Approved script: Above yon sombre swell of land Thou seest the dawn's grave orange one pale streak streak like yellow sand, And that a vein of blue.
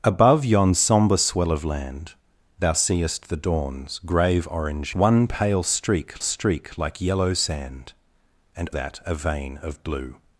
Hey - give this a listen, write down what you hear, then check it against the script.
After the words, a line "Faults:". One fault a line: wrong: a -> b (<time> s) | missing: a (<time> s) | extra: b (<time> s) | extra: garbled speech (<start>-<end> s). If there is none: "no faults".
Above yon sombre swell of land Thou seest the dawn's grave orange one pale streak streak like yellow sand, And that a vein of blue.
Faults:
no faults